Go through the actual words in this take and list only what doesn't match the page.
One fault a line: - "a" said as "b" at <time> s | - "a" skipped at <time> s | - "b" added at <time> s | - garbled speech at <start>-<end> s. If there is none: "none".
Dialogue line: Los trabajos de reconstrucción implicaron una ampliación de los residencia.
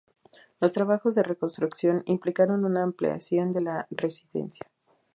- "los" said as "la" at 3.6 s